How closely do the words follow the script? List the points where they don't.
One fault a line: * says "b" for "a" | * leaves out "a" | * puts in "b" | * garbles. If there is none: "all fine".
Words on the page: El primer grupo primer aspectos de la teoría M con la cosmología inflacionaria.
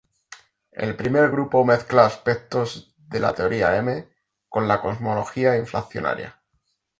* says "mezcla" for "primer"